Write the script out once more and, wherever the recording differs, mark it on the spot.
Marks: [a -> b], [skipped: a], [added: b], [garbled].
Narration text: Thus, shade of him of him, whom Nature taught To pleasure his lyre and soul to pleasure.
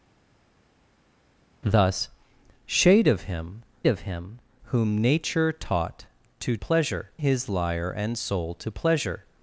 Thus, shade of him of him, whom Nature taught To pleasure his lyre and soul to pleasure.